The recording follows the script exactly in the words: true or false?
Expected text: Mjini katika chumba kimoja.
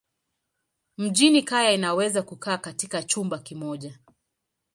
false